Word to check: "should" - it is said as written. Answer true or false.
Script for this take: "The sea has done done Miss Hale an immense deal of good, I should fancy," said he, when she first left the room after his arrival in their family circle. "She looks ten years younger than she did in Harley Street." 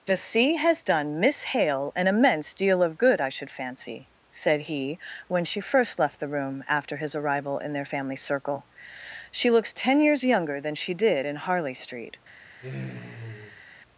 true